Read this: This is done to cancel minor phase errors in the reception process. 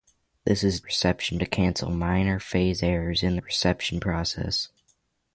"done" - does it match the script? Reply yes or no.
no